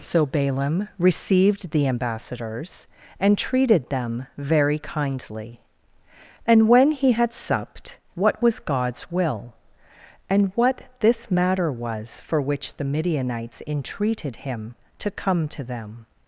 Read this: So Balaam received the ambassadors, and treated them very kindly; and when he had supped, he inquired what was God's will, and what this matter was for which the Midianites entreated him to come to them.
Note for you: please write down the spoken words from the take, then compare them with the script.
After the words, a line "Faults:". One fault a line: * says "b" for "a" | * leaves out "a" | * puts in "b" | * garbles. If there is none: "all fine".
So Balaam received the ambassadors, and treated them very kindly; and when he had supped, what was God's will, and what this matter was for which the Midianites entreated him to come to them.
Faults:
* leaves out "he inquired"